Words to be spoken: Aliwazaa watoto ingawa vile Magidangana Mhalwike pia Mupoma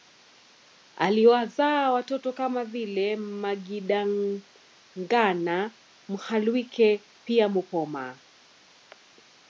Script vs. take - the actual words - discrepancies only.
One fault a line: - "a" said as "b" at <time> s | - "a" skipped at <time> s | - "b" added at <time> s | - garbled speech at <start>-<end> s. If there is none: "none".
- "ingawa" said as "kama" at 2.3 s